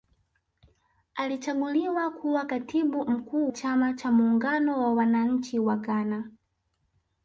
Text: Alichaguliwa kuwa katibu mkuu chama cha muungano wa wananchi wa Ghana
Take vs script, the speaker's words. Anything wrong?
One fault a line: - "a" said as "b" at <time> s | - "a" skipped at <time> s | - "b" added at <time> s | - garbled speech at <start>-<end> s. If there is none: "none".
none